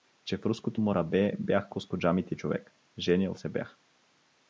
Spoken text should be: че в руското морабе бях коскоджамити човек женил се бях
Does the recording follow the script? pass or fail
pass